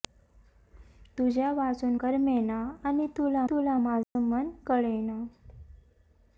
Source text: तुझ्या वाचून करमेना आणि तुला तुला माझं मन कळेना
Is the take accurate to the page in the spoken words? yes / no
yes